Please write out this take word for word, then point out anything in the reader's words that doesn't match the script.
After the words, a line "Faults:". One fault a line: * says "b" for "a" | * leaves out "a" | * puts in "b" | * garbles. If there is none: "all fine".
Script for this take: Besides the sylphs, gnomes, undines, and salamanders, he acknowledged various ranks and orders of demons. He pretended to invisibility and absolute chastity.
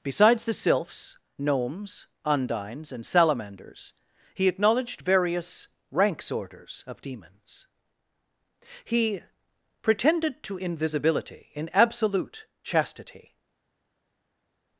Besides the sylphs, gnomes, undines, and salamanders, he acknowledged various ranks orders of demons. He pretended to invisibility in absolute chastity.
Faults:
* leaves out "and"
* says "in" for "and"